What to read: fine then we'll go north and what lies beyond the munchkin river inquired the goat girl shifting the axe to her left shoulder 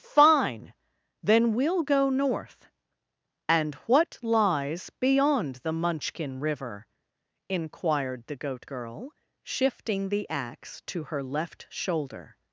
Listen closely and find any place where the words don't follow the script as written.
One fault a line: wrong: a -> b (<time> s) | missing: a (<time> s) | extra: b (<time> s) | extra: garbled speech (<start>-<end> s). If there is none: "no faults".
no faults